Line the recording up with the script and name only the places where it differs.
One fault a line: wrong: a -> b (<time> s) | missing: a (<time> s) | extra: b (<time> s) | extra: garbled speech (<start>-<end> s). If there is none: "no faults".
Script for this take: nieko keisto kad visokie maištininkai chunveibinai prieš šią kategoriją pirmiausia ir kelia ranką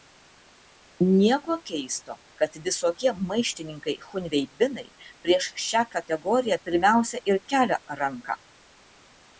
no faults